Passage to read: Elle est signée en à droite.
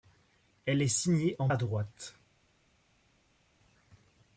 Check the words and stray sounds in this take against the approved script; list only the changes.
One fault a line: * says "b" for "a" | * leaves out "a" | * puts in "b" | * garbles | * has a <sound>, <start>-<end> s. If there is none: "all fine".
all fine